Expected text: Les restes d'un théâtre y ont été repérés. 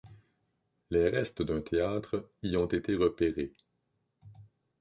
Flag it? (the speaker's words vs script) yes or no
no